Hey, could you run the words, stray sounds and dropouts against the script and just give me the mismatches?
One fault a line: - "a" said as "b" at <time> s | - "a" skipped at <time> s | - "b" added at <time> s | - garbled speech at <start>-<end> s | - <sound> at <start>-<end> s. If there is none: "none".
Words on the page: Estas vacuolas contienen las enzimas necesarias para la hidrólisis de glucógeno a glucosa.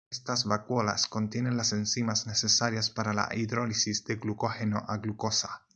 none